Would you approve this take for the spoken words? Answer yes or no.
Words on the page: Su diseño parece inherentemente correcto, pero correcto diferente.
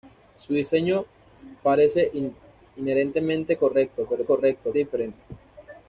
yes